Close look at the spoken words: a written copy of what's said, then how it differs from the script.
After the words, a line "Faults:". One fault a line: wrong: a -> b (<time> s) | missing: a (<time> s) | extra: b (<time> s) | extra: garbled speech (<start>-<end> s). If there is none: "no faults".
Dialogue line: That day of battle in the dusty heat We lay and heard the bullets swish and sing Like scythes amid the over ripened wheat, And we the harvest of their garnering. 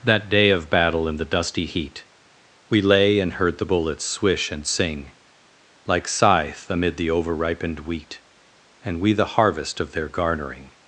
That day of battle in the dusty heat We lay and heard the bullets swish and sing Like scythe amid the over ripened wheat, And we the harvest of their garnering.
Faults:
wrong: scythes -> scythe (6.1 s)